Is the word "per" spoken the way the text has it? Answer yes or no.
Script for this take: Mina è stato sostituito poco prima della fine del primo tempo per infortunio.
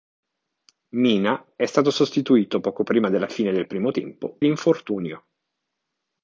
no